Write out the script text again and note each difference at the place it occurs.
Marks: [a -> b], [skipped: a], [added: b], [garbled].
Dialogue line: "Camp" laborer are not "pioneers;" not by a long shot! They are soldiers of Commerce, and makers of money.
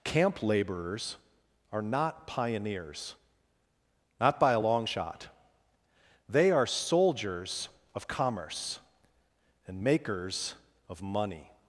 "Camp" [laborer -> laborers] are not "pioneers;" not by a long shot! They are soldiers of Commerce, and makers of money.